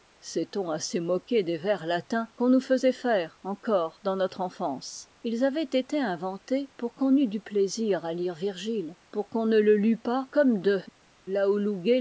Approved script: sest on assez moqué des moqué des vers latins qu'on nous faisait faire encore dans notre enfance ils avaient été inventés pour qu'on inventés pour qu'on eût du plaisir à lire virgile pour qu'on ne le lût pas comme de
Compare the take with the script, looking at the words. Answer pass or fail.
fail